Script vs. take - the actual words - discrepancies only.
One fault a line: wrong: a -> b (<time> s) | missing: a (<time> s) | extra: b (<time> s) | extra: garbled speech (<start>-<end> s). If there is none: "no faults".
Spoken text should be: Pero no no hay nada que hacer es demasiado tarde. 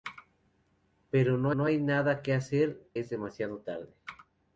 no faults